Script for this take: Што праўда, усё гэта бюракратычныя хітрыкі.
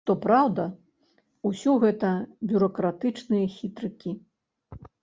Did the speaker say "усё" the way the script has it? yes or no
yes